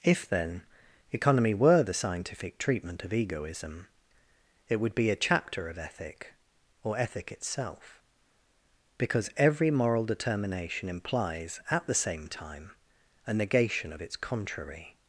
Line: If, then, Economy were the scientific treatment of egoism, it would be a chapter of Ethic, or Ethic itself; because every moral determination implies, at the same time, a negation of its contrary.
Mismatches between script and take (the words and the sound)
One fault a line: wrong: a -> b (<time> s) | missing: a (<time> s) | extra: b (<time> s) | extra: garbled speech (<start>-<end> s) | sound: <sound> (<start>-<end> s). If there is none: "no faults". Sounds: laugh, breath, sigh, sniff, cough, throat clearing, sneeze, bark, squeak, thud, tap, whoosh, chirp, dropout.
no faults